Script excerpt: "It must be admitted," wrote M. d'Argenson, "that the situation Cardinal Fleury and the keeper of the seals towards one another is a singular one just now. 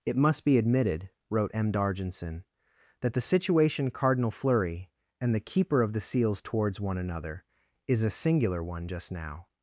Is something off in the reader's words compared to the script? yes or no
no